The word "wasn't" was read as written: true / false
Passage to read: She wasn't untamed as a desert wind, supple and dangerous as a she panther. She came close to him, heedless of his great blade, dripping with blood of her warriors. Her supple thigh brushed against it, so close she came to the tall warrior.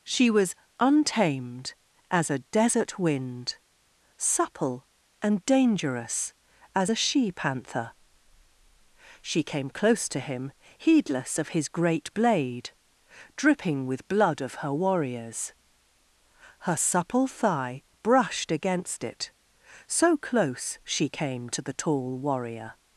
false